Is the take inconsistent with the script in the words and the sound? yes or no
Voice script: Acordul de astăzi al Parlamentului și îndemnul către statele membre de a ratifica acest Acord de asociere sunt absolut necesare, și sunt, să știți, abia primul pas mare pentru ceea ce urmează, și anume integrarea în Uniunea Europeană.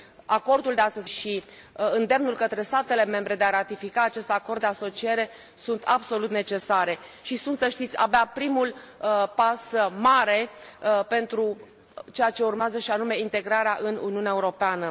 yes